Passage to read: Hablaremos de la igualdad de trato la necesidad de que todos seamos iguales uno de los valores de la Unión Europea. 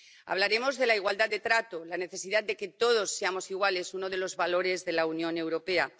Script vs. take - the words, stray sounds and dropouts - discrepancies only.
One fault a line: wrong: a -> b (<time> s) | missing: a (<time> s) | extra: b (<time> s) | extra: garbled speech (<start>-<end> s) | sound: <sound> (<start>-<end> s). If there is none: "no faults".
no faults